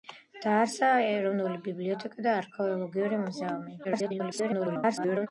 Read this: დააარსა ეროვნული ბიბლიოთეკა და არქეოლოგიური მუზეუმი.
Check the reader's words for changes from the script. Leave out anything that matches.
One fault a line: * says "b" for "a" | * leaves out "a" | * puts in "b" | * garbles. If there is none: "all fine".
* garbles